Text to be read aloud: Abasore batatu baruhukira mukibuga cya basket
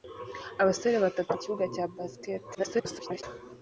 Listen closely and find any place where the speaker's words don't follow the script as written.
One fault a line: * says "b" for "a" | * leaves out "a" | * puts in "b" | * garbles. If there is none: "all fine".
* leaves out "baruhukira"
* garbles